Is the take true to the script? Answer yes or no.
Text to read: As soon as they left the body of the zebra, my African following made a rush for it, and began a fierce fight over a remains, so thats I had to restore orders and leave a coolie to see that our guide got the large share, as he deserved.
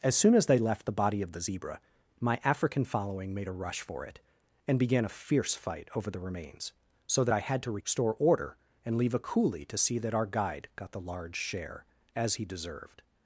no